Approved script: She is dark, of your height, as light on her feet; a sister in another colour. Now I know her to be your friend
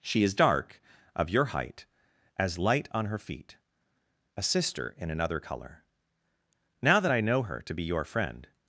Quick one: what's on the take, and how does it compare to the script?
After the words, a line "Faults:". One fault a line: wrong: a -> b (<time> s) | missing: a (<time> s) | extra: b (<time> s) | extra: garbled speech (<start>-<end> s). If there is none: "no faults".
She is dark, of your height, as light on her feet; a sister in another colour. Now that I know her to be your friend
Faults:
extra: that (7.0 s)